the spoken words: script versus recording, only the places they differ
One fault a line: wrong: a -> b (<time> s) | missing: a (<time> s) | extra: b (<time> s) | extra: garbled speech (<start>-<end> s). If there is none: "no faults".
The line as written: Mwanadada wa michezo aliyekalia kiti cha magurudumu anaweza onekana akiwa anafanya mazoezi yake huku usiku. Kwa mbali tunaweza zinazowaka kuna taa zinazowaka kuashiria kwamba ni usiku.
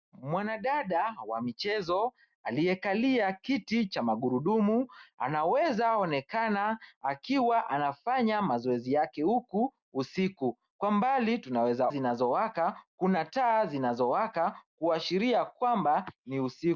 no faults